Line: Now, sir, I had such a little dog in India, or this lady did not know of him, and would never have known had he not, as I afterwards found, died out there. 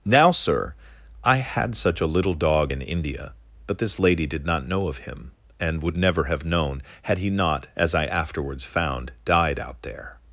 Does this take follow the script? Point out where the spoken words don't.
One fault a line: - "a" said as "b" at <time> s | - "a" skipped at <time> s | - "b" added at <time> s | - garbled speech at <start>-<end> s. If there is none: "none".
- "or" said as "but" at 3.7 s